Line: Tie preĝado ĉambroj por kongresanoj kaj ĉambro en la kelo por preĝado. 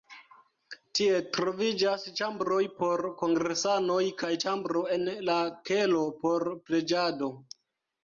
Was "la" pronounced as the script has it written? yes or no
yes